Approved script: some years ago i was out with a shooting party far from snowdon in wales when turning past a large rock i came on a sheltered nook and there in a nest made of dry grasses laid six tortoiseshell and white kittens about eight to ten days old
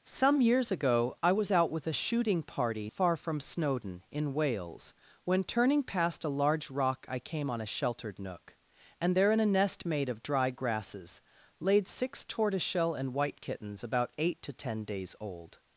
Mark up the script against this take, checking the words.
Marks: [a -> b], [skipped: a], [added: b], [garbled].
some years ago i was out with a shooting party far from snowdon in wales when turning past a large rock i came on a sheltered nook and there in a nest made of dry grasses laid six tortoiseshell and white kittens about eight to ten days old